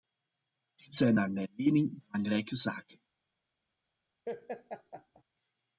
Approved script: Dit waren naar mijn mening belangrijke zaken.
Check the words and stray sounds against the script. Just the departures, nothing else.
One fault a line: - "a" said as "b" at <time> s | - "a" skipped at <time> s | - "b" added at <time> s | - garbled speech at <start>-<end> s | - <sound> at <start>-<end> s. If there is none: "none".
- "waren" said as "zijn" at 0.9 s
- laugh at 4.3-5.2 s